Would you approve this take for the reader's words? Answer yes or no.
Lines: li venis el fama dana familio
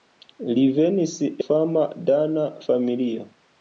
no